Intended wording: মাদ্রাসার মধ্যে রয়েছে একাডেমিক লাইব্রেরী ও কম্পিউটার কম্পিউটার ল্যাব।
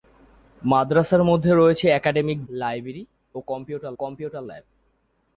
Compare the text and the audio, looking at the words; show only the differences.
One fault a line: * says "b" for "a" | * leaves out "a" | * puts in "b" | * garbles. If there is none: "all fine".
all fine